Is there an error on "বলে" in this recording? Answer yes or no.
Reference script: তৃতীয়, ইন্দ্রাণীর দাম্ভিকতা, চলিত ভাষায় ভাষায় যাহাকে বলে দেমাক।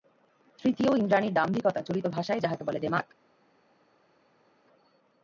no